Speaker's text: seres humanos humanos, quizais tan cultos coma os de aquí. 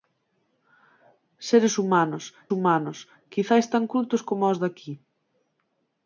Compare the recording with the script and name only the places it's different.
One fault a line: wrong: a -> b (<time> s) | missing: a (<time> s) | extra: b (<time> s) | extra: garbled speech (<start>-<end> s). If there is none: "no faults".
no faults